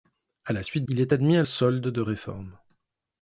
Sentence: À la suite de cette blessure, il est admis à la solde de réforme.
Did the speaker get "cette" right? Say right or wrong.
wrong